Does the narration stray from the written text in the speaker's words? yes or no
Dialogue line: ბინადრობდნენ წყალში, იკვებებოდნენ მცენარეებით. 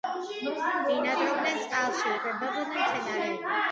no